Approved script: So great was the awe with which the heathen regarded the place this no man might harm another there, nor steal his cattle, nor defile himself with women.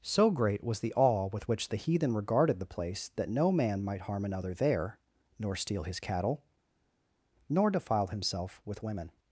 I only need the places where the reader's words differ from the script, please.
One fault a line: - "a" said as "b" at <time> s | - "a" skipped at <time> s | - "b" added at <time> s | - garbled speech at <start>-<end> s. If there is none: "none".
- "this" said as "that" at 3.2 s